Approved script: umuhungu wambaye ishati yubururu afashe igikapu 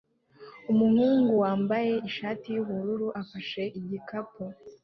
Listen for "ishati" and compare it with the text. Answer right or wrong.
right